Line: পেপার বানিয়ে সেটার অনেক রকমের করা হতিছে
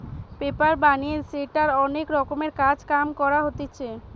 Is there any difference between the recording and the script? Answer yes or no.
yes